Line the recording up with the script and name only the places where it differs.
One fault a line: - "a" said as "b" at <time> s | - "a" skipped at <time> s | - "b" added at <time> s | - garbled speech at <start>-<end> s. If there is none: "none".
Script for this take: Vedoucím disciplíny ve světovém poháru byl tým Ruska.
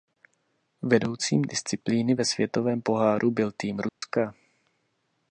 none